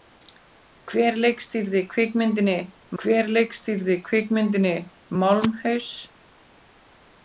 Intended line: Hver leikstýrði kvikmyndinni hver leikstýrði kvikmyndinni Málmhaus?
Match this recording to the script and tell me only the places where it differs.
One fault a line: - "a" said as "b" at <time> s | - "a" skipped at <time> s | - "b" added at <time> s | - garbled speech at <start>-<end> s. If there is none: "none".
none